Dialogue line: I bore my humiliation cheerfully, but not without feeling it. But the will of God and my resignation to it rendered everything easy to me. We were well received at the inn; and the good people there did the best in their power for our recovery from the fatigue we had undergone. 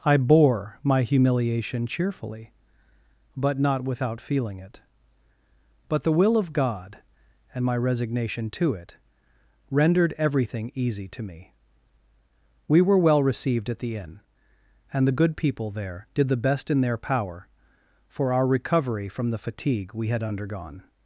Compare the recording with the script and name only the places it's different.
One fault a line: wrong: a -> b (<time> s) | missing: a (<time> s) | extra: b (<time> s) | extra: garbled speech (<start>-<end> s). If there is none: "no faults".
no faults